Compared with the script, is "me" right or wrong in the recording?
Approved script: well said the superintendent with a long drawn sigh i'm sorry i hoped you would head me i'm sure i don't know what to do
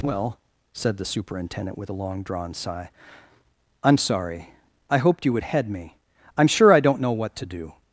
right